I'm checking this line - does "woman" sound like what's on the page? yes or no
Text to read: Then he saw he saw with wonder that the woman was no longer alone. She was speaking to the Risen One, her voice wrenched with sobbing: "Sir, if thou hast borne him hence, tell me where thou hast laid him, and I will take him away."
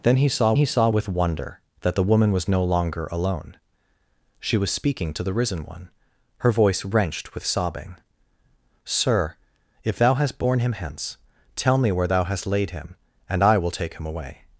yes